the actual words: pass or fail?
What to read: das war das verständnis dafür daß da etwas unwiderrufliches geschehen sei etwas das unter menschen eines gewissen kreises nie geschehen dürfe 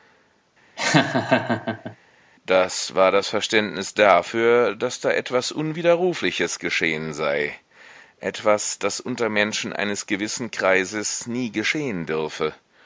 pass